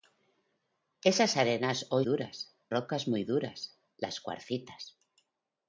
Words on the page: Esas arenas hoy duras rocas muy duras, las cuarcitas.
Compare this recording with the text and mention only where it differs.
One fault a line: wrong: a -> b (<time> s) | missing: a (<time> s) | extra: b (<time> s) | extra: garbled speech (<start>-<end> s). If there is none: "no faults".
no faults